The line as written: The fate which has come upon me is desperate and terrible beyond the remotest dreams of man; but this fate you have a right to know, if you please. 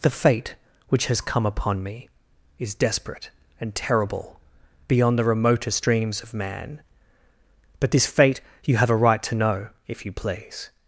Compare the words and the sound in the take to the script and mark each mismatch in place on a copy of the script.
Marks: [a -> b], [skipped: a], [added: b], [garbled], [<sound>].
The fate which has come upon me is desperate and terrible beyond the remotest dreams of man; but this fate you have a right to know, if you please.